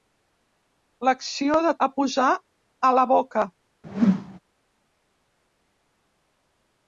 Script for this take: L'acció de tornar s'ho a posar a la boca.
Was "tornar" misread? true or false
true